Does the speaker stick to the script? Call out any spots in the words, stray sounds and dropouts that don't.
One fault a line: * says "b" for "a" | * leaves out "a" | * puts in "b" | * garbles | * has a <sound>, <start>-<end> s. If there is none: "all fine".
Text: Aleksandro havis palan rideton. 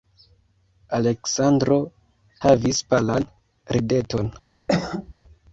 * has a cough, 4.7-5.1 s